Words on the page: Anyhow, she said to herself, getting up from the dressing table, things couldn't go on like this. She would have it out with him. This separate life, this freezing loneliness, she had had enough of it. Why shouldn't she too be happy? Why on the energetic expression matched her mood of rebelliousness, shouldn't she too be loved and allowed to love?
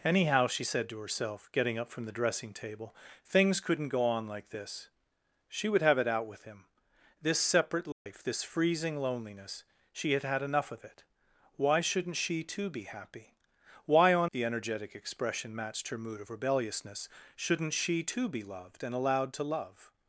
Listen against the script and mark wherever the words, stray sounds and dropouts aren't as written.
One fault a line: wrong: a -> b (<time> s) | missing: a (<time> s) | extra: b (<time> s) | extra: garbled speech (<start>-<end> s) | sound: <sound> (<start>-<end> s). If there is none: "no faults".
sound: dropout (7.9-8.1 s)